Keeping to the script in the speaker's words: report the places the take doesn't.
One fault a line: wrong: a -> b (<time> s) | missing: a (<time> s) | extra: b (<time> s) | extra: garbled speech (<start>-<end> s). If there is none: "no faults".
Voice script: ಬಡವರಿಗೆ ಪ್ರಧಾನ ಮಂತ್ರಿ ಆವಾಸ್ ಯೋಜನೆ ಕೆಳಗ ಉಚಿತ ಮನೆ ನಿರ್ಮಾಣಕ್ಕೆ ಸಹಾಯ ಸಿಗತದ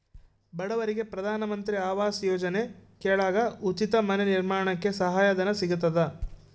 extra: ಧನ (5.3 s)